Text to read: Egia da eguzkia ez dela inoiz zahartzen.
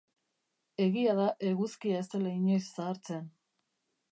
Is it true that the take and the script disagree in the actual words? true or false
false